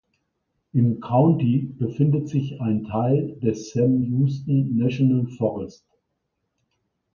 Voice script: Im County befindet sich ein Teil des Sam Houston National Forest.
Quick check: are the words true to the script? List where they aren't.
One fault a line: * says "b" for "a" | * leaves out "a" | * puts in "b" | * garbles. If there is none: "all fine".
all fine